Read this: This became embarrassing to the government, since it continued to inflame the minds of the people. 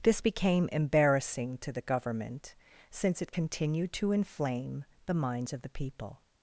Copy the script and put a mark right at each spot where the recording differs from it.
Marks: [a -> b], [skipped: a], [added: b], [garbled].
This became embarrassing to the government, since it continued to inflame the minds of the people.